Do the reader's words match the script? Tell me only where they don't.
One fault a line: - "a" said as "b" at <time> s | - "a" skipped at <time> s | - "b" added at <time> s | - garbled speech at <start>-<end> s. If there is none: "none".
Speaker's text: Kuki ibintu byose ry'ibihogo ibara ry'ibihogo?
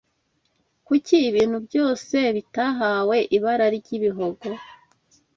- "ry'ibihogo" said as "bitahawe" at 2.4 s